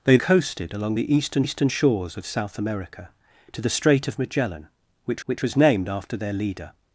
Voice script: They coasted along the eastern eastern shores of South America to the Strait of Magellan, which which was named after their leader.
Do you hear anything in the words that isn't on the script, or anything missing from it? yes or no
no